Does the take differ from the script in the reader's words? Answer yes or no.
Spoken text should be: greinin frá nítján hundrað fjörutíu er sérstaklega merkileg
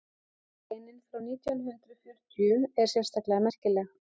no